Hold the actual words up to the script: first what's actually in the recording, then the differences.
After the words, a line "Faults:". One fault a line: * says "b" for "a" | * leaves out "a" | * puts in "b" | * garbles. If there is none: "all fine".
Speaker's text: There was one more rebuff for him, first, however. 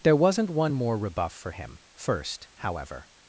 There wasn't one more rebuff for him, first, however.
Faults:
* says "wasn't" for "was"